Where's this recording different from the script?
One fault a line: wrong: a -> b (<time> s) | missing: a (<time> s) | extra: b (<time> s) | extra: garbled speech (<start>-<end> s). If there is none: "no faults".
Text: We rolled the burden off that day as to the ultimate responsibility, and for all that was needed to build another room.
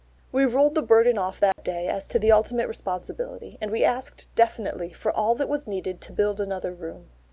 extra: we asked definitely (3.7 s)